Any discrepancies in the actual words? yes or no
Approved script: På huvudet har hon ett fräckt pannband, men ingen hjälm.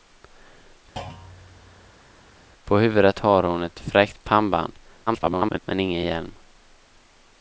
yes